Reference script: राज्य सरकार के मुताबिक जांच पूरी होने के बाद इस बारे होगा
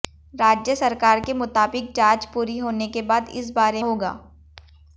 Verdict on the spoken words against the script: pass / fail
pass